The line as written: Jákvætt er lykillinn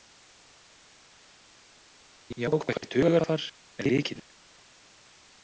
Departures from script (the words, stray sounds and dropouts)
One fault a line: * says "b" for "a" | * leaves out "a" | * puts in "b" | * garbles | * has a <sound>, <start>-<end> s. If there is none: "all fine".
* puts in "hugarfar"